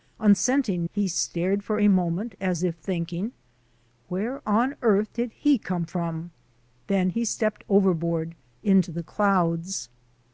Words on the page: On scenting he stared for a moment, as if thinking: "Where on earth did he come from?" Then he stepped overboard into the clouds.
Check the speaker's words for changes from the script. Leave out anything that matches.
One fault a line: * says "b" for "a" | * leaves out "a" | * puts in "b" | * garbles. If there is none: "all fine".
all fine